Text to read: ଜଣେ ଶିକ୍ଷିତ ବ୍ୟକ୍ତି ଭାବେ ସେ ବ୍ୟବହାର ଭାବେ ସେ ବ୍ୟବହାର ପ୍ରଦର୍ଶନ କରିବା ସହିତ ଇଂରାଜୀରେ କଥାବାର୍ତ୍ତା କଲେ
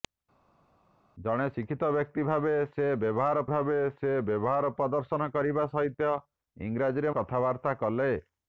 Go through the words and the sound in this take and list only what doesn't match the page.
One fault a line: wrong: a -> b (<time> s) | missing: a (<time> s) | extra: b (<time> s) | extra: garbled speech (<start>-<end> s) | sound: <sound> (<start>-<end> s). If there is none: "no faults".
no faults